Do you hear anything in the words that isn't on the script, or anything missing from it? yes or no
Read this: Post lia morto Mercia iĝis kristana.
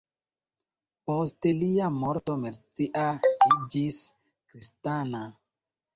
no